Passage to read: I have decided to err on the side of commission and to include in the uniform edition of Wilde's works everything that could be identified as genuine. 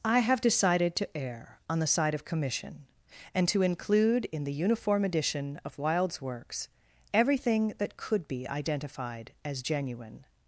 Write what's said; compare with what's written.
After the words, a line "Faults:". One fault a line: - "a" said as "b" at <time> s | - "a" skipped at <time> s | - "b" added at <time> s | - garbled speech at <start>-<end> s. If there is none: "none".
I have decided to err on the side of commission and to include in the uniform edition of Wilde's works everything that could be identified as genuine.
Faults:
none